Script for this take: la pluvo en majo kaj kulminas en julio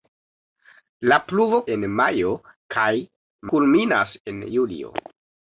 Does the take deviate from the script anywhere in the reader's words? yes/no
no